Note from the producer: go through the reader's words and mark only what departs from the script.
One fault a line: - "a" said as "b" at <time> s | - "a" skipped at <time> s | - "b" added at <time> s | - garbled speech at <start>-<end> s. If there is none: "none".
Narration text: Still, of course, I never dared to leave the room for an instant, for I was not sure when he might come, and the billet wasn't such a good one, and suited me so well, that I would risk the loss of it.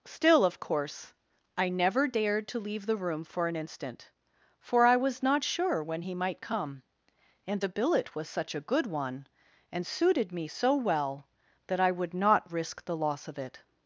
- "wasn't" said as "was" at 8.1 s
- "not" added at 12.1 s